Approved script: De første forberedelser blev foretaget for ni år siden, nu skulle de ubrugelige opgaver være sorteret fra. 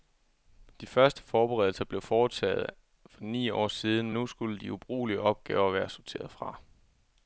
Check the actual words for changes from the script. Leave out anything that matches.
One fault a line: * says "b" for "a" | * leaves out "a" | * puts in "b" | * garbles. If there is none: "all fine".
all fine